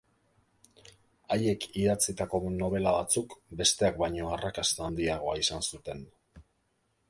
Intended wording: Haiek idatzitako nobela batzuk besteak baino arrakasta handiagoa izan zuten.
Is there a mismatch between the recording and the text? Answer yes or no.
no